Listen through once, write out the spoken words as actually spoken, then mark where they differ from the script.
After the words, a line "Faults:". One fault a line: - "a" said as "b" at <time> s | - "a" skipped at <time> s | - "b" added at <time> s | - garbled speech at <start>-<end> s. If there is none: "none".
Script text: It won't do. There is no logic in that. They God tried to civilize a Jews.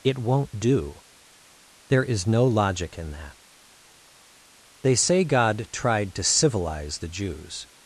It won't do. There is no logic in that. They say God tried to civilize the Jews.
Faults:
- "say" added at 4.9 s
- "a" said as "the" at 7.0 s